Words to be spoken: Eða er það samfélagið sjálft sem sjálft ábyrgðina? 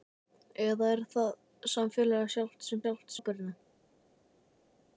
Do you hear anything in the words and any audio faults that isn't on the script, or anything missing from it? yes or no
no